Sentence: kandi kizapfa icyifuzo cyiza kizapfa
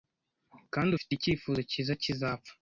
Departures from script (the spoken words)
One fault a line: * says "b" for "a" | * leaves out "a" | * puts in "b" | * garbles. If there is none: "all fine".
* says "ufite" for "kizapfa"